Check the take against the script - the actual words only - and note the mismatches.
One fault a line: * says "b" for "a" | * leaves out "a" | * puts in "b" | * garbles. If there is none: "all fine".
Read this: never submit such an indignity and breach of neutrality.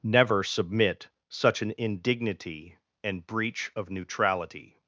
all fine